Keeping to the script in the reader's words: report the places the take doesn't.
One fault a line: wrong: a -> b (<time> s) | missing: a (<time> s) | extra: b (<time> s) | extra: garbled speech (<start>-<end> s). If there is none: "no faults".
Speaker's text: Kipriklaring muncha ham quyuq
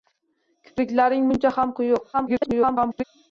extra: garbled speech (2.1-3.0 s)